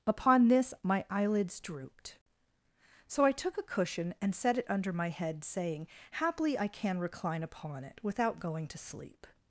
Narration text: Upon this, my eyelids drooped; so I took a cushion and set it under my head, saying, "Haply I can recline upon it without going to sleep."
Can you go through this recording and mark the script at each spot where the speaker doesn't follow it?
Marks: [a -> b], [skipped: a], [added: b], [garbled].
Upon this, my eyelids drooped; so I took a cushion and set it under my head, saying, "Haply I can recline upon it without going to sleep."